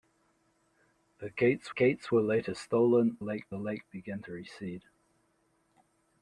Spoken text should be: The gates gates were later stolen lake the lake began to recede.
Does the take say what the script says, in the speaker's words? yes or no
yes